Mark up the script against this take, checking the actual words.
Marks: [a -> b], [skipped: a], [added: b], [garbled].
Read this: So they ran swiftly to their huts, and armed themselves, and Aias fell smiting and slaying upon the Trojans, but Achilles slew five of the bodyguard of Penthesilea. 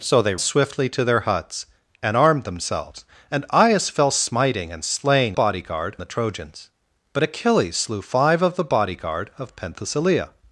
So they [skipped: ran] swiftly to their huts, and armed themselves, and Aias fell smiting and slaying [upon -> bodyguard] the Trojans, but Achilles slew five of the bodyguard of Penthesilea.